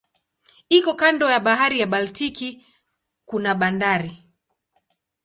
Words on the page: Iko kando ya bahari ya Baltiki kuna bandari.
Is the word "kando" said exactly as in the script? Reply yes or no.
yes